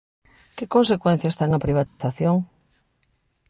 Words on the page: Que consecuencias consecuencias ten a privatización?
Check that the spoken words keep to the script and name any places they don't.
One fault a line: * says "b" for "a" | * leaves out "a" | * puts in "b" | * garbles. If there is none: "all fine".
* leaves out "consecuencias"